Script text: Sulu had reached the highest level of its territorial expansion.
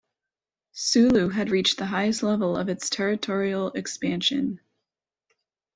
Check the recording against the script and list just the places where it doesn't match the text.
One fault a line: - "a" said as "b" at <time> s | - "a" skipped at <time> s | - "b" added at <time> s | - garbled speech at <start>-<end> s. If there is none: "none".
none